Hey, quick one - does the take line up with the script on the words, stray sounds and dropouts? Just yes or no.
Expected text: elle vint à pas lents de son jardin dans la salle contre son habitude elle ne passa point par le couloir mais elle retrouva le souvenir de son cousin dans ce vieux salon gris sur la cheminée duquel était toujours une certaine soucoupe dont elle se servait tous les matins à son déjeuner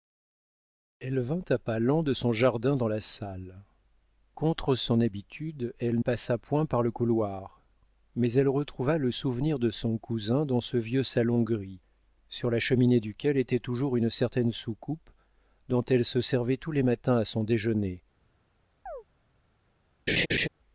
no